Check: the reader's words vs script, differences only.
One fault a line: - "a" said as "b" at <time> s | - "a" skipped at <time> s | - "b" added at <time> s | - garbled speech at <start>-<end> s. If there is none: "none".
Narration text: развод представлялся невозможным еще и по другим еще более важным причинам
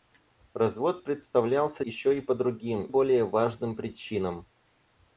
- "невозможным" skipped at 1.9 s
- "еще" skipped at 2.9 s